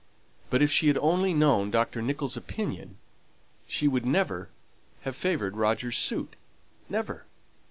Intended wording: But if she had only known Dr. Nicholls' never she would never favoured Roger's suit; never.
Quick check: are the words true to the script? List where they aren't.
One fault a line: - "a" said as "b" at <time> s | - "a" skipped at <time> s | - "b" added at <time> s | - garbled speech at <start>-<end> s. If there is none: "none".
- "never" said as "opinion" at 2.4 s
- "have" added at 5.0 s